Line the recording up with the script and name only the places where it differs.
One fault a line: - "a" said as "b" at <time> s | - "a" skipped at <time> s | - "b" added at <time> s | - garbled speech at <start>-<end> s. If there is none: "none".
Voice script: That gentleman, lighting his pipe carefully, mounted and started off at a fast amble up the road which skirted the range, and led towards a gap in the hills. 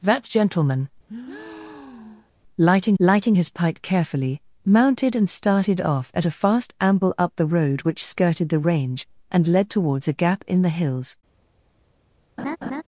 - "lighting" added at 3.0 s